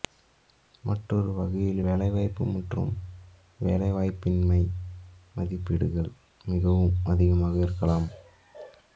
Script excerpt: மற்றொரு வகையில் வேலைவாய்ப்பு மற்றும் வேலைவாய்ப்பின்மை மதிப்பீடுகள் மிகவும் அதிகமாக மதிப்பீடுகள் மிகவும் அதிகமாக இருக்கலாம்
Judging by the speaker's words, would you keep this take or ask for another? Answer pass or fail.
fail